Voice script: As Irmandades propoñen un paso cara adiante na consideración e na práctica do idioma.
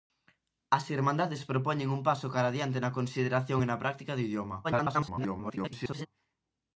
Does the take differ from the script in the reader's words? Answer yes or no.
yes